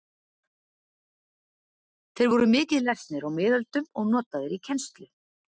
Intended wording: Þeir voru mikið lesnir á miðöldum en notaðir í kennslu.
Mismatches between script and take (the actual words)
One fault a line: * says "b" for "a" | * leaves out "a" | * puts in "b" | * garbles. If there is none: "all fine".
* says "og" for "en"